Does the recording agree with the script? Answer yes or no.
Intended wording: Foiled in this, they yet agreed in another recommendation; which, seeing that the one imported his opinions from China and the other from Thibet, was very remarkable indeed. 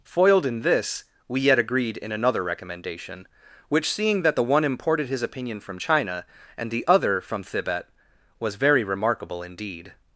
no